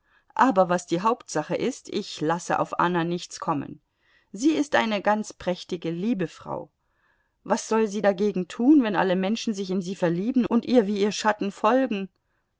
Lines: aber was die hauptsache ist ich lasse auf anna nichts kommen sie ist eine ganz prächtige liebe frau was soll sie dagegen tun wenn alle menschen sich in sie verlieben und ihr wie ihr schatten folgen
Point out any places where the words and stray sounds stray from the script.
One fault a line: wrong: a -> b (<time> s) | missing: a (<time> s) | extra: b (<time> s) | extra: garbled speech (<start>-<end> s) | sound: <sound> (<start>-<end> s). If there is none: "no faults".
no faults